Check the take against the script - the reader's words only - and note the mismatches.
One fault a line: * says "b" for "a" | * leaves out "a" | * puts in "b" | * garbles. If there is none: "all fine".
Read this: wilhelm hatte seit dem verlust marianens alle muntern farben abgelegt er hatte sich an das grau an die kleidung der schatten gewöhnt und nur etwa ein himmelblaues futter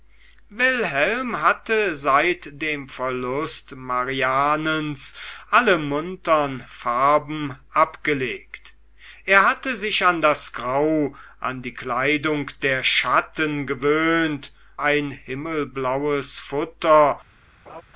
* leaves out "und nur etwa"